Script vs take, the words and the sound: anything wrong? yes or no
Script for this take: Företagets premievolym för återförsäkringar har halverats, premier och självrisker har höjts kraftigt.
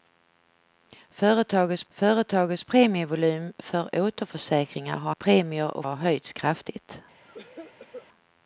yes